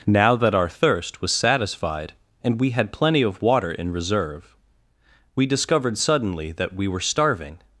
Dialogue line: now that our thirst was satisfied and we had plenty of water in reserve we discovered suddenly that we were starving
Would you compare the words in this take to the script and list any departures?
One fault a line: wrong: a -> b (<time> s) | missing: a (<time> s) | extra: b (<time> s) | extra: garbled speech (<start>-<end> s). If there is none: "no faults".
no faults